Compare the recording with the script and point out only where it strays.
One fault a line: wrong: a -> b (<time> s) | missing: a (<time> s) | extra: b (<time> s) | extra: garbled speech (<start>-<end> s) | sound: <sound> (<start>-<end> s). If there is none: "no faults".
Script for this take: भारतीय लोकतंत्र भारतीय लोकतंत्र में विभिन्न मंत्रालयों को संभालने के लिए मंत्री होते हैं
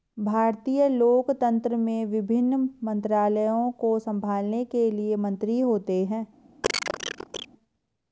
missing: भारतीय लोकतंत्र (1.8 s)
sound: cough (6.6-7.5 s)